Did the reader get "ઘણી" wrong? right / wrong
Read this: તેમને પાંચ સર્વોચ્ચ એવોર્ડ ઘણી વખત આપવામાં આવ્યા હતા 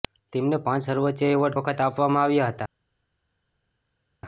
wrong